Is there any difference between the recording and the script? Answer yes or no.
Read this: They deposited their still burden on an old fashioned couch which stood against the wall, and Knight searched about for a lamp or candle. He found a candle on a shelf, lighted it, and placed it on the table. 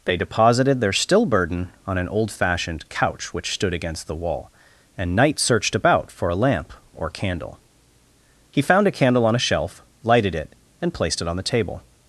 no